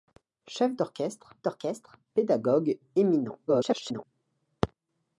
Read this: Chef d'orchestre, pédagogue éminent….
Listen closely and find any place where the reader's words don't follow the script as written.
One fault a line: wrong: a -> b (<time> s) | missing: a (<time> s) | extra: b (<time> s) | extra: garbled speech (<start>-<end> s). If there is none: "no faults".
extra: d'orchestre (1.4 s)
extra: garbled speech (3.5-4.0 s)